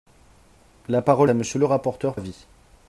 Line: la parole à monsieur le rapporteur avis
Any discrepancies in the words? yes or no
no